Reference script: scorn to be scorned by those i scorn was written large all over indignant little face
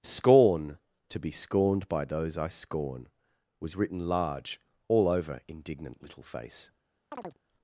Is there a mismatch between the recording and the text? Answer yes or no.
no